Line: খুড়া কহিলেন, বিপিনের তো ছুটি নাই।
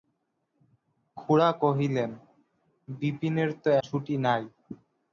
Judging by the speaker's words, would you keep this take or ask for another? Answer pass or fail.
pass